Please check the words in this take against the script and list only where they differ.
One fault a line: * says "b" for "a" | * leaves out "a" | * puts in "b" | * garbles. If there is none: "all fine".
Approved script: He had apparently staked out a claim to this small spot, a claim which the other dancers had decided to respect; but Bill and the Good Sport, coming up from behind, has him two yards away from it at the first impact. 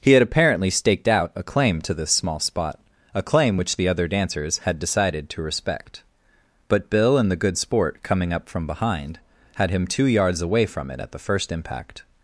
* says "had" for "has"